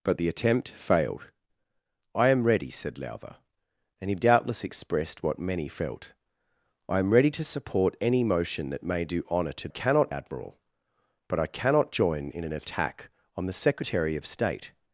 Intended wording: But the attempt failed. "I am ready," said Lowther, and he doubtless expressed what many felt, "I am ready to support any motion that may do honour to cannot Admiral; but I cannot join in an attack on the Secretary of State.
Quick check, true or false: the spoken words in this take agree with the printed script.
true